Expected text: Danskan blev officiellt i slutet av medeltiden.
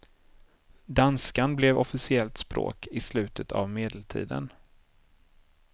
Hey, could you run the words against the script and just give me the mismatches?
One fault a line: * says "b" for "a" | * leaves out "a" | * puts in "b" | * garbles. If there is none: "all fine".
* puts in "språk"